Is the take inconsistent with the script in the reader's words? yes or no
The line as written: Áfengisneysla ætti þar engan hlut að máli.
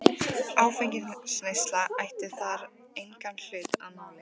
no